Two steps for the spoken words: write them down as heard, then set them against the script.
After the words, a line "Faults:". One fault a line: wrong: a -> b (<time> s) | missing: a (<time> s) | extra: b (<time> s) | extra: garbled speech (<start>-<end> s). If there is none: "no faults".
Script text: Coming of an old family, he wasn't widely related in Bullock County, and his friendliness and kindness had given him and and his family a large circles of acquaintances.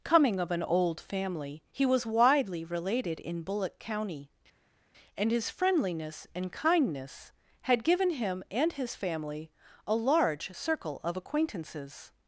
Coming of an old family, he was widely related in Bullock County, and his friendliness and kindness had given him and his family a large circle of acquaintances.
Faults:
wrong: wasn't -> was (1.9 s)
missing: and (8.7 s)
wrong: circles -> circle (10.5 s)